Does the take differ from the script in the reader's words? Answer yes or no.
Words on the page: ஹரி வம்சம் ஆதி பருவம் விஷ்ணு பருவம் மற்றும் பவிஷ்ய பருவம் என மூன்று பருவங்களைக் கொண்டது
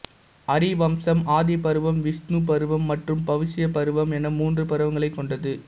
no